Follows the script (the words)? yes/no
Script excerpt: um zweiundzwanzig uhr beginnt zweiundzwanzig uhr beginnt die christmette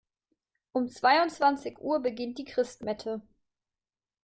no